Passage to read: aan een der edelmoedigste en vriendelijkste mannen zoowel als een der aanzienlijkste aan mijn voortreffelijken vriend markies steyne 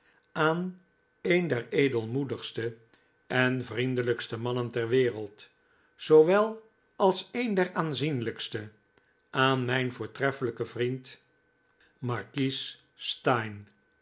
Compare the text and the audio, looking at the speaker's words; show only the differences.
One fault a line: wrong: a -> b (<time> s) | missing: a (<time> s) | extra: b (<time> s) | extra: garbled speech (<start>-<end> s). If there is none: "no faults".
extra: ter wereld (4.7 s)